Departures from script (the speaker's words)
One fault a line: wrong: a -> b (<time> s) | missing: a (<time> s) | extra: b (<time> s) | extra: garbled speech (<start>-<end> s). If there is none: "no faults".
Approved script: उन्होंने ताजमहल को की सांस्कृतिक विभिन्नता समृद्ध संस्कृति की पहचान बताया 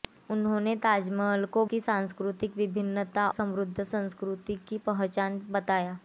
no faults